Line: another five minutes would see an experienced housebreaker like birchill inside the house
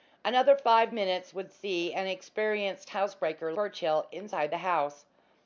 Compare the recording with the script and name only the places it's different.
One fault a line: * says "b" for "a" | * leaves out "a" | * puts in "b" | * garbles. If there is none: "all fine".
* leaves out "like"